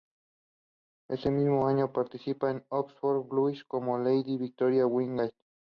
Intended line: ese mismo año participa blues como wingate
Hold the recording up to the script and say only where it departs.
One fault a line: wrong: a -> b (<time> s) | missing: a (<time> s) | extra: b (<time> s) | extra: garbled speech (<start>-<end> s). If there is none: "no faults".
extra: en oxford (2.5 s)
extra: lady victoria (4.0 s)